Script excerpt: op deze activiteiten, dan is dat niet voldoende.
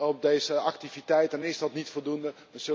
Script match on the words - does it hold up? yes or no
yes